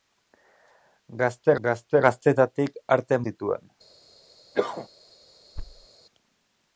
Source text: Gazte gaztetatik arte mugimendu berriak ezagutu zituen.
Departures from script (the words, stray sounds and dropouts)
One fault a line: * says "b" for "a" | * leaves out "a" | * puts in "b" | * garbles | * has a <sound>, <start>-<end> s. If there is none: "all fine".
* puts in "gazte"
* leaves out "mugimendu berriak ezagutu"
* has a cough, 4.5-4.9 s
* has a thud, 5.6-5.9 s